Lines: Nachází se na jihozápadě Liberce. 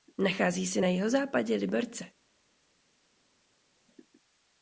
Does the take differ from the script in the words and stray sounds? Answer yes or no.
no